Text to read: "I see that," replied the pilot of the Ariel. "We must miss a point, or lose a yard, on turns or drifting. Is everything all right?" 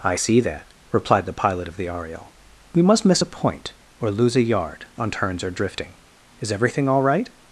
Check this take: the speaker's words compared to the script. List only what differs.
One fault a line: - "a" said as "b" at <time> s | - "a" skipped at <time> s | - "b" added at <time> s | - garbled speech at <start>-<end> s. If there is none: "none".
none